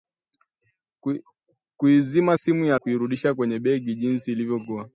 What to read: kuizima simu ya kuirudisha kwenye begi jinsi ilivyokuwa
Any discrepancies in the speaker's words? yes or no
no